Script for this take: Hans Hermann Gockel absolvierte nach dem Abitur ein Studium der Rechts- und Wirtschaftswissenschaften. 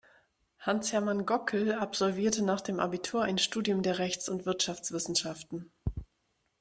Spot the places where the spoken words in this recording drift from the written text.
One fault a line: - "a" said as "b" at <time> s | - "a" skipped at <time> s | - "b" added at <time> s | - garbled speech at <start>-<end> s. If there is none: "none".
none